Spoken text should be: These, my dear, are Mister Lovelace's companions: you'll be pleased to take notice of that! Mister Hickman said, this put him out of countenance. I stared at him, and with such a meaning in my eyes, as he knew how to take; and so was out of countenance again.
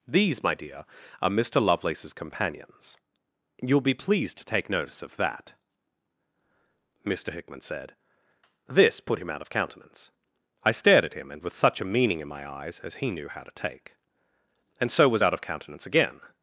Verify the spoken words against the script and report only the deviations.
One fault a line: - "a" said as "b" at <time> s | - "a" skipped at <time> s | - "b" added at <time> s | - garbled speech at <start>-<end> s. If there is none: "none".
none